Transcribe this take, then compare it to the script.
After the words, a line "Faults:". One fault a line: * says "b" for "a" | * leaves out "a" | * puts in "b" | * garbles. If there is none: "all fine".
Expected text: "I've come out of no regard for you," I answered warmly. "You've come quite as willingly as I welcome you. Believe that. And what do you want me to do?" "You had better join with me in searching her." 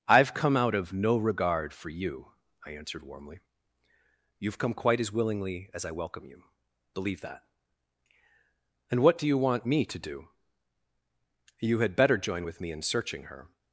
"I've come out of no regard for you," I answered warmly. "You've come quite as willingly as I welcome you. Believe that. And what do you want me to do?" "You had better join with me in searching her."
Faults:
all fine